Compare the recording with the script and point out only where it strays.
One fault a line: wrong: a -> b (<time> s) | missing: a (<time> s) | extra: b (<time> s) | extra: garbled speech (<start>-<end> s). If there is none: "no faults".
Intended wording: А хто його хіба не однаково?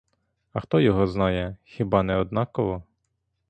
extra: знає (1.1 s)